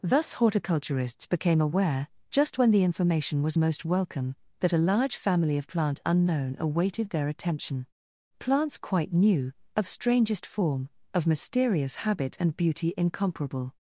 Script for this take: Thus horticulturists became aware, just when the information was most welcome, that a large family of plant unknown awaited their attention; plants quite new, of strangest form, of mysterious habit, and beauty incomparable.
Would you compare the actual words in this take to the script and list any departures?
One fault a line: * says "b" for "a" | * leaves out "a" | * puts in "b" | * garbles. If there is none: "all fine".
all fine